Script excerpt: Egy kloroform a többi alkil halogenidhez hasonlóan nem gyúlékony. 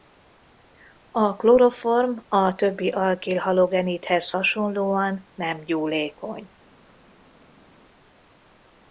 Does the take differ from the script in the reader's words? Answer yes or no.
yes